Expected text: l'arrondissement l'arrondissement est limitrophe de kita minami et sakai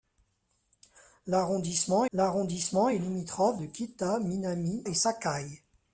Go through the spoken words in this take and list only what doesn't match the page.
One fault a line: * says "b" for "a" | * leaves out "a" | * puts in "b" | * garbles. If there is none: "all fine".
all fine